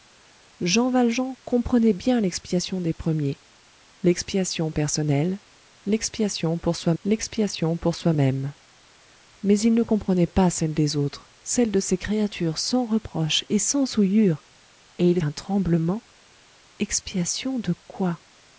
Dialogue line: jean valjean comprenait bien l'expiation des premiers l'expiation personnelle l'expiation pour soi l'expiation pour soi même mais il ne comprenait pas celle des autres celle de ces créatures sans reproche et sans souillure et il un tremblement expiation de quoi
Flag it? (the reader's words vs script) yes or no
no